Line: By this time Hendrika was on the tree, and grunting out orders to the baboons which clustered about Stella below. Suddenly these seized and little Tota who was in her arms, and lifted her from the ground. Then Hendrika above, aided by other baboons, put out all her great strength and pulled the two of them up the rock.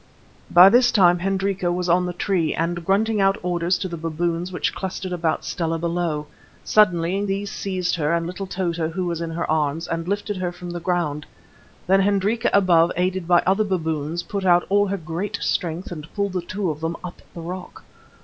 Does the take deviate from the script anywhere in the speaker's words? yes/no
yes